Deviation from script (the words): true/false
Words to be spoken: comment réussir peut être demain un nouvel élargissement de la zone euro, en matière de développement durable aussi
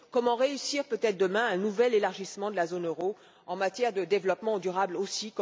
false